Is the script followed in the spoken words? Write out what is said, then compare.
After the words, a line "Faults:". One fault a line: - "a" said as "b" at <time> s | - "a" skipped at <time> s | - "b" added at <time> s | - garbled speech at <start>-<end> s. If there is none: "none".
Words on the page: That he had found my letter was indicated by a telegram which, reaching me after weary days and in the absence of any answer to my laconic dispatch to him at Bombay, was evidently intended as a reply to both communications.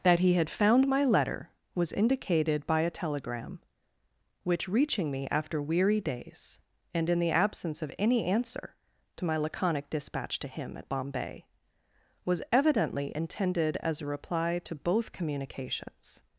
That he had found my letter was indicated by a telegram which, reaching me after weary days and in the absence of any answer to my laconic dispatch to him at Bombay, was evidently intended as a reply to both communications.
Faults:
none